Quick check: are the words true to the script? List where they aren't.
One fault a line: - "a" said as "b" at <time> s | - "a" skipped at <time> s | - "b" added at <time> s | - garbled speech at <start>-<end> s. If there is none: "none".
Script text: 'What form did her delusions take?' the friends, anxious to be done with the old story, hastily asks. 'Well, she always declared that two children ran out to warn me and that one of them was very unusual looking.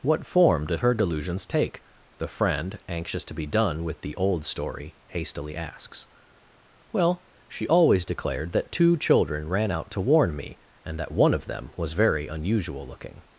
- "friends" said as "friend" at 2.3 s